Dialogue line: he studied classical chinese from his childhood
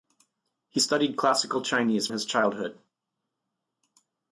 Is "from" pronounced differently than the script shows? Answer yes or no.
yes